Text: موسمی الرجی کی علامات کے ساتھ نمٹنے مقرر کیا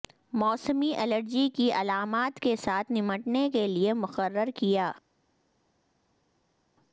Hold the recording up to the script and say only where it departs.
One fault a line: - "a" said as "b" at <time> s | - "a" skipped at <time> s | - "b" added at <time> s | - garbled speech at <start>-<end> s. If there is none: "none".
- "کے لئے" added at 3.5 s